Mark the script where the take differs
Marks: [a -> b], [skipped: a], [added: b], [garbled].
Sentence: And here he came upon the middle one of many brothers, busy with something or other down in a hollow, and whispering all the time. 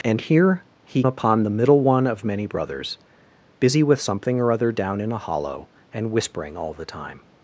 And here he [skipped: came] upon the middle one of many brothers, busy with something or other down in a hollow, and whispering all the time.